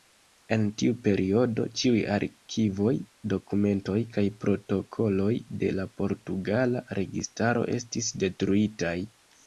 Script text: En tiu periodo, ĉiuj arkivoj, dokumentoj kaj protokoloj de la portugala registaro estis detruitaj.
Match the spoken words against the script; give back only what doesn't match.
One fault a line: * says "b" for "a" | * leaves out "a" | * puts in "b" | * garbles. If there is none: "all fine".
all fine